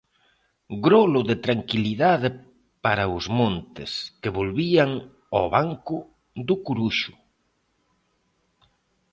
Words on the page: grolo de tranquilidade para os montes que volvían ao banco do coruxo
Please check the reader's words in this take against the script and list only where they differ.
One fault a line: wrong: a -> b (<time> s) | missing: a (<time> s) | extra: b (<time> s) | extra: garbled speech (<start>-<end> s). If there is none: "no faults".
no faults